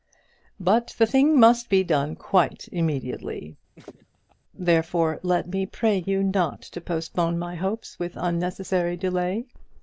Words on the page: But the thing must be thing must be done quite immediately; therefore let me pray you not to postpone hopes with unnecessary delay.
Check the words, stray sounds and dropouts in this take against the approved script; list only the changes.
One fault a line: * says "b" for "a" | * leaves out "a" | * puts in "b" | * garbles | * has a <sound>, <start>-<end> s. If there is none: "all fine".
* leaves out "thing must be"
* has a laugh, 3.8-4.4 s
* puts in "my"